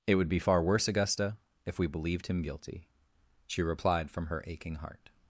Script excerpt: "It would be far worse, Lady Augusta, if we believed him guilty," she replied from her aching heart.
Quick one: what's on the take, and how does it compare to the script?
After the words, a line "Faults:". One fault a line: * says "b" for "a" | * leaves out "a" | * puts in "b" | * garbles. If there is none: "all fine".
"It would be far worse, Augusta, if we believed him guilty," she replied from her aching heart.
Faults:
* leaves out "Lady"